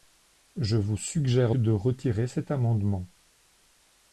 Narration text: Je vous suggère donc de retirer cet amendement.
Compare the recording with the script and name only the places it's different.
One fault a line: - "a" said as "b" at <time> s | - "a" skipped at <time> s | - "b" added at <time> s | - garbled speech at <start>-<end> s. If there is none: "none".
- "donc" skipped at 1.6 s